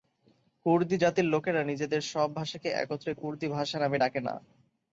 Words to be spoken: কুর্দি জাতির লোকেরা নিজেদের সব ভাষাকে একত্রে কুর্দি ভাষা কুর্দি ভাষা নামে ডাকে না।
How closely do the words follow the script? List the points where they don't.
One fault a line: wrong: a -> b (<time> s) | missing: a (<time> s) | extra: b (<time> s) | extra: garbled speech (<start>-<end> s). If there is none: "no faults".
missing: কুর্দি ভাষা (3.8 s)